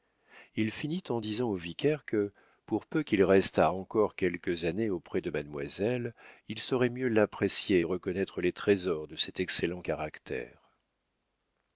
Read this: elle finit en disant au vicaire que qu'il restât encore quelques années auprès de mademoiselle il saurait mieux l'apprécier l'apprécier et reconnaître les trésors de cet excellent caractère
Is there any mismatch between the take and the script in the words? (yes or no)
yes